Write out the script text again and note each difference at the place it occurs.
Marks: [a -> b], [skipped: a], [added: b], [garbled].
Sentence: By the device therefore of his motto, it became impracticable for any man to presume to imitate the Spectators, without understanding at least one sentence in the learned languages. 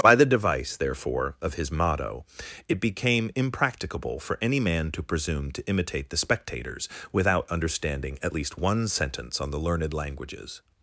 By the device therefore of his motto, it became impracticable for any man to presume to imitate the Spectators, without understanding at least one sentence [in -> on] the learned languages.